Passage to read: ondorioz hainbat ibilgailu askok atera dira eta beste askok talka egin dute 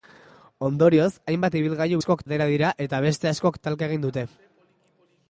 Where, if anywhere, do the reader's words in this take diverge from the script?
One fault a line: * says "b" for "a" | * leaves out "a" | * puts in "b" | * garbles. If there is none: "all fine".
all fine